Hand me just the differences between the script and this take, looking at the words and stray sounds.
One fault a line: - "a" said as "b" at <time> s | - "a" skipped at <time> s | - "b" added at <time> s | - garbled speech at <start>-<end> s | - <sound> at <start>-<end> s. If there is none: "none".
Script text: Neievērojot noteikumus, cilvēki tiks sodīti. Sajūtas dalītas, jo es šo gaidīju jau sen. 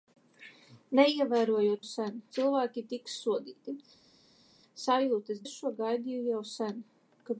- "noteikumus" said as "sen" at 1.9 s
- "dalītas jo" skipped at 5.4 s